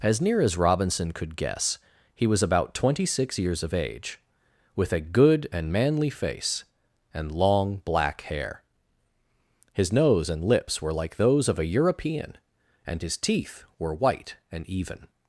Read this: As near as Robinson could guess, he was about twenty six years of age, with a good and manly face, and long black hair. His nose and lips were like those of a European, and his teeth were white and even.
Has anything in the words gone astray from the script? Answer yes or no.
no